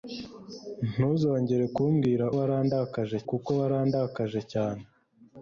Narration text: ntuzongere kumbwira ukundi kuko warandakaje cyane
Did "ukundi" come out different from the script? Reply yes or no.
yes